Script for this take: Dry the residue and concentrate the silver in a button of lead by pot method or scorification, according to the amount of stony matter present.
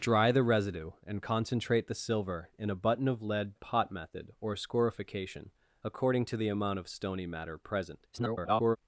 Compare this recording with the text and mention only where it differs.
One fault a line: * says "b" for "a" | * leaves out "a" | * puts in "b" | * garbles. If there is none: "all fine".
* leaves out "by"
* garbles